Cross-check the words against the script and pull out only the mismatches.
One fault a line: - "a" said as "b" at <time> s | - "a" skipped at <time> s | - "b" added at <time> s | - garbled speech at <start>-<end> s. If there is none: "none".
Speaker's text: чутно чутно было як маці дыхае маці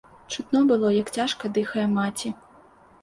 - "чутно" skipped at 0.6 s
- "маці" said as "цяжка" at 1.2 s